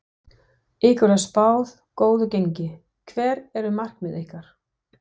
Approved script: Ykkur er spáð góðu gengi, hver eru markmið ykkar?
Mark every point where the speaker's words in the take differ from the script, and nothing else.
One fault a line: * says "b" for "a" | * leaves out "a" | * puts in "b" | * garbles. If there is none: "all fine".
all fine